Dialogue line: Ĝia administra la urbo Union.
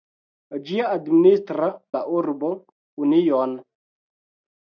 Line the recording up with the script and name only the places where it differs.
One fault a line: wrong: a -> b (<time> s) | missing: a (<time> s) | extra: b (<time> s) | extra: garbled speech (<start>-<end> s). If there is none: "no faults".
no faults